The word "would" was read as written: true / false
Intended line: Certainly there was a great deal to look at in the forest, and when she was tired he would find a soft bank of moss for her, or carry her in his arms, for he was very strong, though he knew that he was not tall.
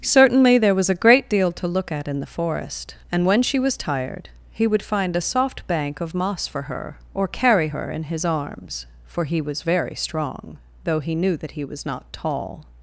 true